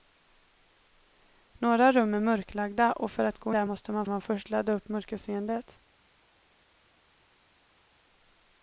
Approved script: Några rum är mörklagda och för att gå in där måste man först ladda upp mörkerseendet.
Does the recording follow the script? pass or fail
fail